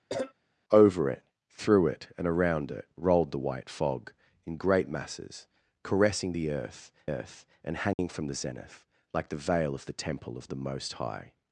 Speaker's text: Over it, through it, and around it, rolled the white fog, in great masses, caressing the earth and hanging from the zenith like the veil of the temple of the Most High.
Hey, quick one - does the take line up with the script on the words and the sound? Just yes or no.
no